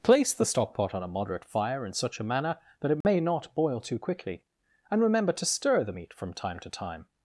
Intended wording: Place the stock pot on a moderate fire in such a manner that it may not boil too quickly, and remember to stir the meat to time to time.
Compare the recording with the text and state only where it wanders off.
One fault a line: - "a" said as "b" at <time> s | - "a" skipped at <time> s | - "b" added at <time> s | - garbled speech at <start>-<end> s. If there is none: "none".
- "to" said as "from" at 6.1 s